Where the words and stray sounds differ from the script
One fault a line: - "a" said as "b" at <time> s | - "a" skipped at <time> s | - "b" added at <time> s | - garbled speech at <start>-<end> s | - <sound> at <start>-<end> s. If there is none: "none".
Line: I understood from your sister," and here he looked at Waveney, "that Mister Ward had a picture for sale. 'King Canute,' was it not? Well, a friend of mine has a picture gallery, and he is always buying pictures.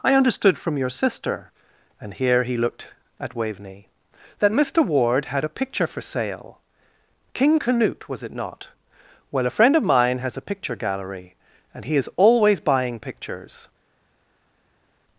none